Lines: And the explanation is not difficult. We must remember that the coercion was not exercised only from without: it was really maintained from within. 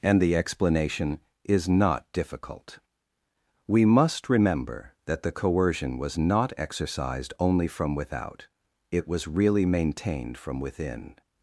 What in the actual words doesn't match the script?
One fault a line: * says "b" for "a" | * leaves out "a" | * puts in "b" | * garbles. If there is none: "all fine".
all fine